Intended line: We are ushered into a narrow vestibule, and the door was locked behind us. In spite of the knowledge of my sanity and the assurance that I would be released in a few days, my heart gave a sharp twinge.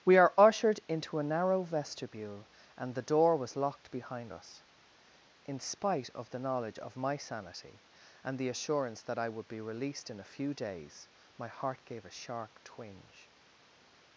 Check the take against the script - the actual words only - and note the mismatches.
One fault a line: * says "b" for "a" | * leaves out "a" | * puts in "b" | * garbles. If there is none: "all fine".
all fine